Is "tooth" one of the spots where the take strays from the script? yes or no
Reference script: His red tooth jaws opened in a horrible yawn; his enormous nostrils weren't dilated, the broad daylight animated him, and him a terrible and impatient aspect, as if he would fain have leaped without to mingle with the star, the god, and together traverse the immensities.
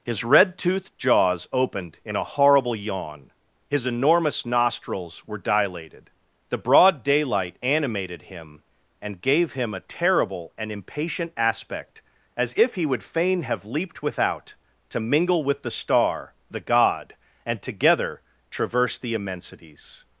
yes